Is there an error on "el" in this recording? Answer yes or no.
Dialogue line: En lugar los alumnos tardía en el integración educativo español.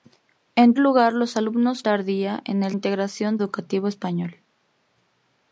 no